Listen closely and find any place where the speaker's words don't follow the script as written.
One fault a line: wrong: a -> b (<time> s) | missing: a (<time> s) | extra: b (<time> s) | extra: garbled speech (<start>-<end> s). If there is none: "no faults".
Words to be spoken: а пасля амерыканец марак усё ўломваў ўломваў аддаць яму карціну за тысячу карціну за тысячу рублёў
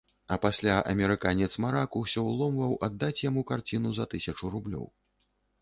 missing: ўломваў (2.7 s)
missing: карціну за тысячу (4.5 s)